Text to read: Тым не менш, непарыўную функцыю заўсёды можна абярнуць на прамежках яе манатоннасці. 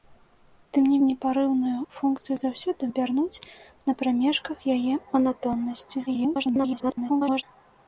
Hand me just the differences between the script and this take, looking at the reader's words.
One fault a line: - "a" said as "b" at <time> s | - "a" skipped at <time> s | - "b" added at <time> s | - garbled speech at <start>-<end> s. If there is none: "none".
- "менш" skipped at 0.9 s
- "можна" skipped at 2.9 s
- garbled speech at 6.1-7.4 s